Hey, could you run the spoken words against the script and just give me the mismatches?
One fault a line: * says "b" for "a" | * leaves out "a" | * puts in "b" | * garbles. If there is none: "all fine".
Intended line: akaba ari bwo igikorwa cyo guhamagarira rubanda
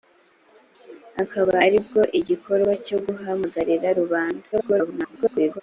* garbles